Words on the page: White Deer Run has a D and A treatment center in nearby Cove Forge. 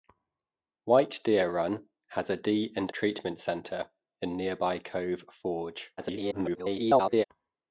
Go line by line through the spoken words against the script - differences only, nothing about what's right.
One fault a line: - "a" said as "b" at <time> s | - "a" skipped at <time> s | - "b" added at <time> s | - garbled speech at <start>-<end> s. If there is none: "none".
- "A" skipped at 2.9 s
- garbled speech at 6.0-7.2 s